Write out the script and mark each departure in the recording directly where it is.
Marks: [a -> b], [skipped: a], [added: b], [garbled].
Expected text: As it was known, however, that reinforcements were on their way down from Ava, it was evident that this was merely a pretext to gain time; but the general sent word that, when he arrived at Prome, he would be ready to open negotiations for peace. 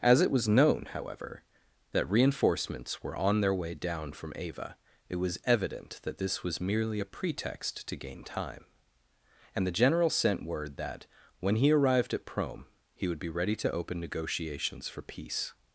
As it was known, however, that reinforcements were on their way down from Ava, it was evident that this was merely a pretext to gain time; [but -> and] the general sent word that, when he arrived at Prome, he would be ready to open negotiations for peace.